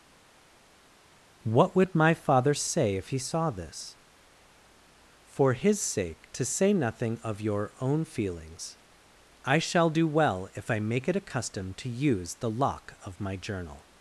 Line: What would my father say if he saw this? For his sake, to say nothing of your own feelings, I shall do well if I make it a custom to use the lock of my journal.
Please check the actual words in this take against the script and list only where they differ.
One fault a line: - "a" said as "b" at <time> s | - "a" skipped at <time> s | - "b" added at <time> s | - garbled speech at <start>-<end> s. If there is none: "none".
none